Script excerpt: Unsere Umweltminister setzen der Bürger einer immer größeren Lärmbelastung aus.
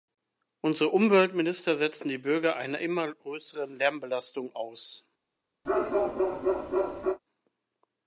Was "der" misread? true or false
true